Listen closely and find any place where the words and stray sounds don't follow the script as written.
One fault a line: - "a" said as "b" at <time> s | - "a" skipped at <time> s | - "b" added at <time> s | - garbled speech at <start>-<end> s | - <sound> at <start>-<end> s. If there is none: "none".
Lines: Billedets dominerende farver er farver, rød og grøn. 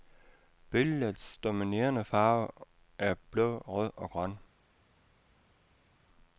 - "farver" said as "blå" at 3.3 s